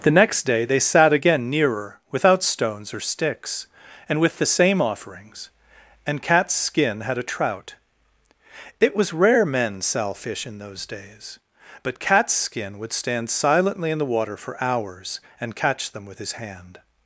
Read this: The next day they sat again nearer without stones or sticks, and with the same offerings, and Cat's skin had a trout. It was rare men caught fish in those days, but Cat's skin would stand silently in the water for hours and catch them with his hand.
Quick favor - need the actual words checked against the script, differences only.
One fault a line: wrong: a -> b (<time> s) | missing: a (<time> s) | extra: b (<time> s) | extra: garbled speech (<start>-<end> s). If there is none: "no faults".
wrong: caught -> sell (9.8 s)